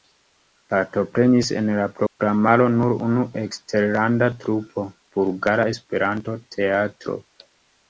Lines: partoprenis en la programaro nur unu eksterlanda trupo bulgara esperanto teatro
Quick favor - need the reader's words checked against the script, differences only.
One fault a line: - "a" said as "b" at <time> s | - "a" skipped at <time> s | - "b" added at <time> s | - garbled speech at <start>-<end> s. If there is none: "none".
none